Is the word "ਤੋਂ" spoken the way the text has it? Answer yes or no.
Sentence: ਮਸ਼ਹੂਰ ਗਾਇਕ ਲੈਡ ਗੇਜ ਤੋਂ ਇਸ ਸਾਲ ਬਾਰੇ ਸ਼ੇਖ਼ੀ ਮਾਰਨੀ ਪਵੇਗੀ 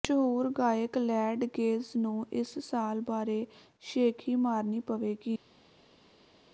no